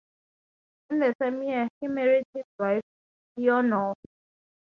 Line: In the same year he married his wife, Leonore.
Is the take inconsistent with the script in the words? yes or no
no